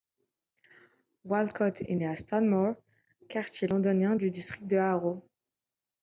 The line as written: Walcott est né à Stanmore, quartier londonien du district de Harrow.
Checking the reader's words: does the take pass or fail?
pass